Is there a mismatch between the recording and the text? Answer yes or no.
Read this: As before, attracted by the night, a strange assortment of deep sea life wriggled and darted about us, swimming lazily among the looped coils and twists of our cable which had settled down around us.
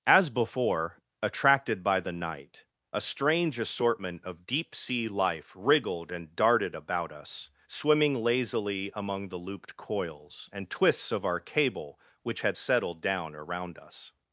no